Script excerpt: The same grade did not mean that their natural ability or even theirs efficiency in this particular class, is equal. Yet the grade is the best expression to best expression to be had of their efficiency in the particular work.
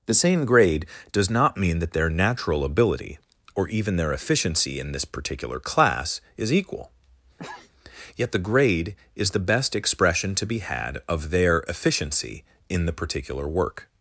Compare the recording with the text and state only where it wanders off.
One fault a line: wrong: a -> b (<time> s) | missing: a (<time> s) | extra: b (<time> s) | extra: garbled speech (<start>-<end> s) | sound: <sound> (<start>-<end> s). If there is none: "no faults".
wrong: did -> does (1.1 s)
wrong: theirs -> their (4.0 s)
sound: sneeze (7.4-7.7 s)
missing: best expression to (10.5 s)